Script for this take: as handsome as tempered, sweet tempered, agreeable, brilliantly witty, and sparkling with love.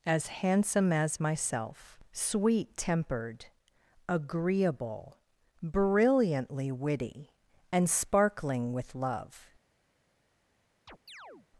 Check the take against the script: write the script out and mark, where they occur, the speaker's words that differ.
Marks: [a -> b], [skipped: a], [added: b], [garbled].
as handsome as [tempered, -> myself] sweet tempered, agreeable, brilliantly witty, and sparkling with love.